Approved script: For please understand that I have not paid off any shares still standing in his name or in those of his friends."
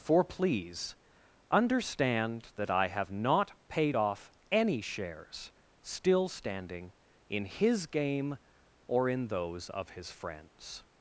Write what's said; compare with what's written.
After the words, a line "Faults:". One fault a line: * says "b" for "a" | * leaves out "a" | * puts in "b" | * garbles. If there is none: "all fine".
For please understand that I have not paid off any shares still standing in his game or in those of his friends."
Faults:
* says "game" for "name"